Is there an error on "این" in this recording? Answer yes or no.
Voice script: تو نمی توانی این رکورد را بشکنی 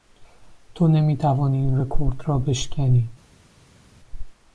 no